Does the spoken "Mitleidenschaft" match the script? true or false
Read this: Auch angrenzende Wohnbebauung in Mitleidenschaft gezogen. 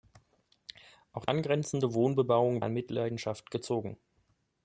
true